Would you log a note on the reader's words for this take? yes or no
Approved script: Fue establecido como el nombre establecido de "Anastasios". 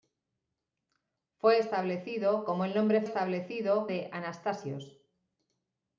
no